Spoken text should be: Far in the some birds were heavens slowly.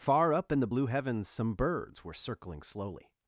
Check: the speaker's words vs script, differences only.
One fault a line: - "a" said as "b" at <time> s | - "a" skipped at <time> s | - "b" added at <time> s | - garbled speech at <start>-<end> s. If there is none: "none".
- "up" added at 0.3 s
- "blue heavens" added at 0.7 s
- "heavens" said as "circling" at 2.1 s